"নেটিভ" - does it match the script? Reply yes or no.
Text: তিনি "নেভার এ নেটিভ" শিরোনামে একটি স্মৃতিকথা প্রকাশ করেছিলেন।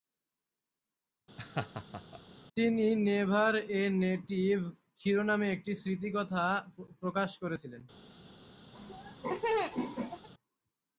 yes